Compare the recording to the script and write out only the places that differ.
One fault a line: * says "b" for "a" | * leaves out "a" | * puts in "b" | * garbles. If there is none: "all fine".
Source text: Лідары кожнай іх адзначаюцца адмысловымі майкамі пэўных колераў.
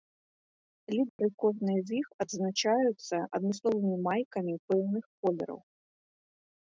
* puts in "з"